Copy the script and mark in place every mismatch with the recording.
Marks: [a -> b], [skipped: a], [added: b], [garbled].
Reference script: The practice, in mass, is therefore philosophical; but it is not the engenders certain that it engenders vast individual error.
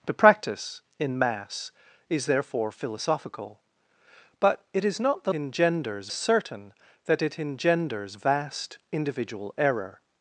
The practice, in mass, is therefore philosophical; but it is not the engenders certain that it engenders vast individual error.